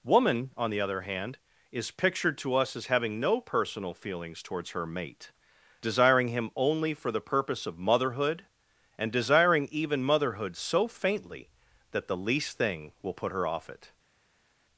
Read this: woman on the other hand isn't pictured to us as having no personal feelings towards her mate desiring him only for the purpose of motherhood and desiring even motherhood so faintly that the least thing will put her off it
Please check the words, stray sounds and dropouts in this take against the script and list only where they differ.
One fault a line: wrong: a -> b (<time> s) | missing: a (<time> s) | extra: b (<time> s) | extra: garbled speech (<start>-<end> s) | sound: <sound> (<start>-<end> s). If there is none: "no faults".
wrong: isn't -> is (1.7 s)